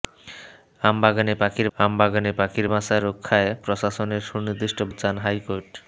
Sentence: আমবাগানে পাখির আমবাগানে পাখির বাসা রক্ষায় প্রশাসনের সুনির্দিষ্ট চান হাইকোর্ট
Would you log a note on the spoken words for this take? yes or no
no